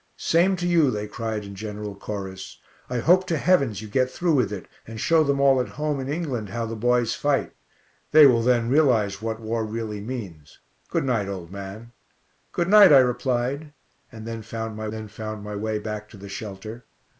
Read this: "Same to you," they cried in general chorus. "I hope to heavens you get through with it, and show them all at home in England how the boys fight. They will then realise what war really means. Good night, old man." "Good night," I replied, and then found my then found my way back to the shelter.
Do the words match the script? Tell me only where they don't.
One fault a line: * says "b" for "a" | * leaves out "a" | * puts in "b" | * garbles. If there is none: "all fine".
all fine